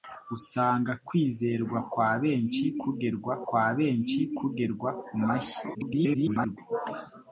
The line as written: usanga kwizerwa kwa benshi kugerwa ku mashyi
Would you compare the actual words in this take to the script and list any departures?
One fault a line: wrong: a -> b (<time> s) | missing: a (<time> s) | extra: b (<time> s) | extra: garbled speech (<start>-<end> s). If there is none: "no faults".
extra: kwa benshi kugerwa (3.5 s)
extra: garbled speech (5.7-6.6 s)